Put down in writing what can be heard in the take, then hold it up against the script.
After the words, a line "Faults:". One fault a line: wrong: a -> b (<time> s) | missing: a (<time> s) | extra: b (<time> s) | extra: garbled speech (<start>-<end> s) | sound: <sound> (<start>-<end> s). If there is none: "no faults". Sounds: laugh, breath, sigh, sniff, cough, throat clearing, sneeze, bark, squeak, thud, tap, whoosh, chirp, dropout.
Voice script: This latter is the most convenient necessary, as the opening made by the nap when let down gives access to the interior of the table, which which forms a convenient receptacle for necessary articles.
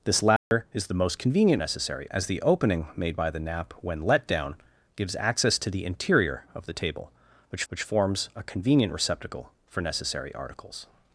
This latter is the most convenient necessary, as the opening made by the nap when let down gives access to the interior of the table, which which forms a convenient receptacle for necessary articles.
Faults:
sound: dropout (0.4-0.5 s)